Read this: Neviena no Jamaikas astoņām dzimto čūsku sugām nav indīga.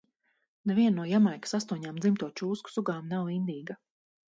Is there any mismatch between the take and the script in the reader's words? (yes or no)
no